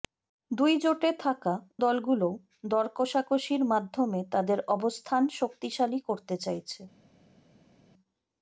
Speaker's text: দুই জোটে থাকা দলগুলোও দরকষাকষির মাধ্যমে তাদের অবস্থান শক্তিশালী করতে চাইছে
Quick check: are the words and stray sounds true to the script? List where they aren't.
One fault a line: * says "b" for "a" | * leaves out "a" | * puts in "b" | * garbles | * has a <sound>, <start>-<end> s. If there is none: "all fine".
all fine